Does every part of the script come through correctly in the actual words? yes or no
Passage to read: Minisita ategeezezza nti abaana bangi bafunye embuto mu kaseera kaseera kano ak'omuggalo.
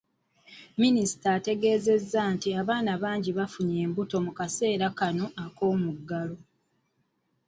no